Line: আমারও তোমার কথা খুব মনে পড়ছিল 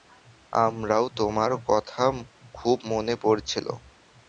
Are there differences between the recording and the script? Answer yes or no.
no